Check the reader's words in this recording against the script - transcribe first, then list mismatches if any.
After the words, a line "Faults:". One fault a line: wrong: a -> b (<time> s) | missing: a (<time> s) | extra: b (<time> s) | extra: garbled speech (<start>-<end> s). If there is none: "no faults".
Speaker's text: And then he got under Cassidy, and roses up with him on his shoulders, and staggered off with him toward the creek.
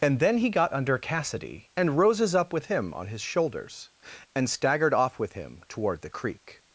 And then he got under Cassidy, and roses up with him on his shoulders, and staggered off with him toward the creek.
Faults:
no faults